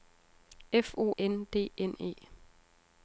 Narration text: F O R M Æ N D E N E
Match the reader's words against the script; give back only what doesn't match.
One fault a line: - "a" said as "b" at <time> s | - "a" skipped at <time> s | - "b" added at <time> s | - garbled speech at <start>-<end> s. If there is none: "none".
- "R M Æ" skipped at 1.1 s
- "E" skipped at 1.7 s